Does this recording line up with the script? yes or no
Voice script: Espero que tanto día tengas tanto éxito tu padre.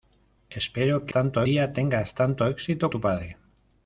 yes